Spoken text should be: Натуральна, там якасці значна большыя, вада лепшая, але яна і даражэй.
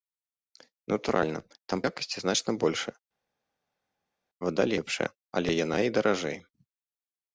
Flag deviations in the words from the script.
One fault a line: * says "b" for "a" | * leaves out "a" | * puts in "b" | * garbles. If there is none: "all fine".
all fine